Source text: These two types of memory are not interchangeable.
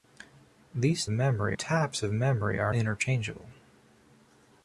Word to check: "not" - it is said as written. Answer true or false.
false